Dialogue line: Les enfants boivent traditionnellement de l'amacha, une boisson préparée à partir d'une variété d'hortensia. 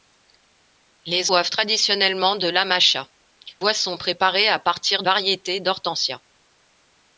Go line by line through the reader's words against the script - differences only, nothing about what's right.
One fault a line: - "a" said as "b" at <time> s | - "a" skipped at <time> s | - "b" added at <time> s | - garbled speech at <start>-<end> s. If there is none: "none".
- "enfants" skipped at 1.3 s
- "une" skipped at 3.1 s
- "d'une" skipped at 5.0 s